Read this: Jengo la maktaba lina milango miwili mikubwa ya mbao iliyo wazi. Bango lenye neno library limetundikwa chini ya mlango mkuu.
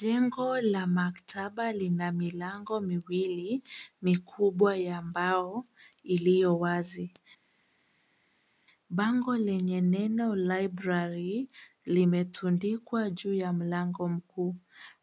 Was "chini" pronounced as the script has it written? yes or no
no